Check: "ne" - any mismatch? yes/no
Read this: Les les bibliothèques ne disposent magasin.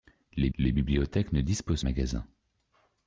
no